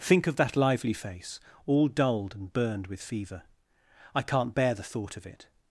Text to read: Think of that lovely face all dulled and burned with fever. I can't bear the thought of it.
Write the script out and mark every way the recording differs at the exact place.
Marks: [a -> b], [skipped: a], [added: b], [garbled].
Think of that [lovely -> lively] face all dulled and burned with fever. I can't bear the thought of it.